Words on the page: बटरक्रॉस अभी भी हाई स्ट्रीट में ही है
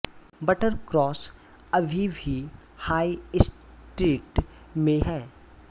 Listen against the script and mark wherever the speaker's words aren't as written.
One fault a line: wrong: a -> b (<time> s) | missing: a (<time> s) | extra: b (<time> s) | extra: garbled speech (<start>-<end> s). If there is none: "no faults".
missing: ही (5.0 s)